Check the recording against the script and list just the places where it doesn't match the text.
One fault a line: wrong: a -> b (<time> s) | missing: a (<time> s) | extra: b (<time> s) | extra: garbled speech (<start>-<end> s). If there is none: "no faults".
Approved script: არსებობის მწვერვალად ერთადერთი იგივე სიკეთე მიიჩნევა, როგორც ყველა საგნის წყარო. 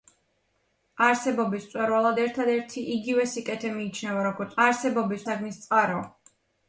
wrong: ყველა -> არსებობის (4.7 s)